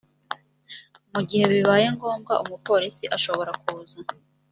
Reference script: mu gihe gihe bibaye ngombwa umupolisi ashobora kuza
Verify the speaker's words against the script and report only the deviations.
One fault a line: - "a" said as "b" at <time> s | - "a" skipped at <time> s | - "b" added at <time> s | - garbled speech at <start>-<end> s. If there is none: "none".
- "gihe" skipped at 1.4 s